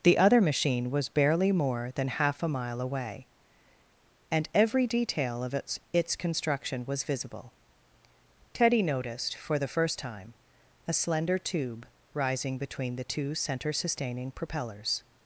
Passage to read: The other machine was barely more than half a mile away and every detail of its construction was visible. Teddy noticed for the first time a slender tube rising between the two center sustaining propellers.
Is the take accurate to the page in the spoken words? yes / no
no